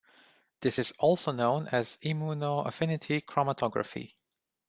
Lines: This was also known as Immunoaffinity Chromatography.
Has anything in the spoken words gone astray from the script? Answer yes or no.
yes